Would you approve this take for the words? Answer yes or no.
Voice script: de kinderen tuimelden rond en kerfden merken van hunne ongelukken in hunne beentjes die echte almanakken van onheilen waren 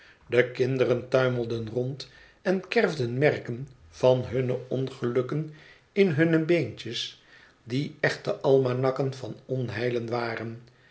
yes